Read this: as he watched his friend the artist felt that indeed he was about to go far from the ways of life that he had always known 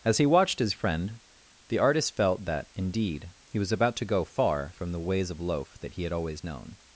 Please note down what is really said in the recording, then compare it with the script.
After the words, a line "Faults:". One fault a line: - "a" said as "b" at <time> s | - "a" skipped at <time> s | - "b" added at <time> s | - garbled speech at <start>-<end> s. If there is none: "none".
as he watched his friend the artist felt that indeed he was about to go far from the ways of loaf that he had always known
Faults:
- "life" said as "loaf" at 5.4 s